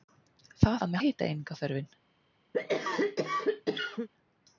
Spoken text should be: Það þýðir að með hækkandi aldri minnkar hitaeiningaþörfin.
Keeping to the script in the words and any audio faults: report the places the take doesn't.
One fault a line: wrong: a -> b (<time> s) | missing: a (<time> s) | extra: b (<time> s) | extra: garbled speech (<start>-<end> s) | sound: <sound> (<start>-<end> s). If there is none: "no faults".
missing: þýðir (0.8 s)
missing: hækkandi aldri minnkar (1.0 s)
sound: cough (2.5-4.1 s)